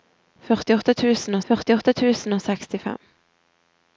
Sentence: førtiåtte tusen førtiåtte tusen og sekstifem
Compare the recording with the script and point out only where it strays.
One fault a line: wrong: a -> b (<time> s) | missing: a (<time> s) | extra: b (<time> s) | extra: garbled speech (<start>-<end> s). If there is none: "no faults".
no faults